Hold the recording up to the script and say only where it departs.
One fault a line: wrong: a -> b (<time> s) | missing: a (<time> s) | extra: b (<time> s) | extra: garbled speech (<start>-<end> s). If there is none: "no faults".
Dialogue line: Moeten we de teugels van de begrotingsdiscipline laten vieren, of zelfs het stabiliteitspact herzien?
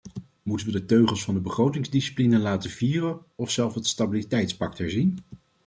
no faults